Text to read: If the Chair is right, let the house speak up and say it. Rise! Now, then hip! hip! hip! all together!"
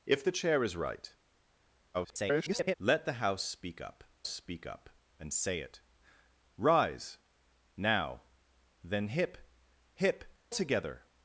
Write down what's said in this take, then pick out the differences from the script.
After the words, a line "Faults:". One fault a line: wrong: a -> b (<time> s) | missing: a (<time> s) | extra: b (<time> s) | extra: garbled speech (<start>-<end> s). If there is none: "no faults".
If the Chair is right, [garbled] let the house speak up speak up and say it. Rise! Now, then hip! hip! together!"
Faults:
extra: garbled speech (1.9-2.7 s)
extra: speak up (4.3 s)
missing: hip all (10.2 s)